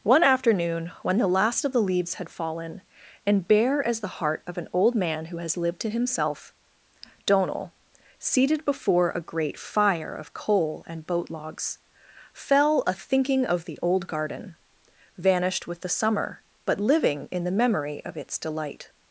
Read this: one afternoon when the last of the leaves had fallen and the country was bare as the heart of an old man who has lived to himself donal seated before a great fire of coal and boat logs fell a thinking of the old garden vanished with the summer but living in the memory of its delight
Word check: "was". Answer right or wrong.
wrong